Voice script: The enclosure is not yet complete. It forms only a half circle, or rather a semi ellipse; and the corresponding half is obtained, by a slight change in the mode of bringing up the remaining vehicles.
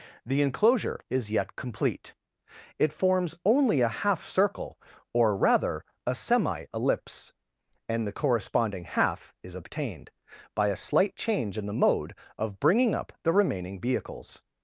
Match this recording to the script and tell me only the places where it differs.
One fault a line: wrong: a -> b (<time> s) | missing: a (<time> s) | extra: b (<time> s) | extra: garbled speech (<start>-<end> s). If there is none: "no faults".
missing: not (1.3 s)